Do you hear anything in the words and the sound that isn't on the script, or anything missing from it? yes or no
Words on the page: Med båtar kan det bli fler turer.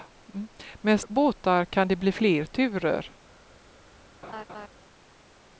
yes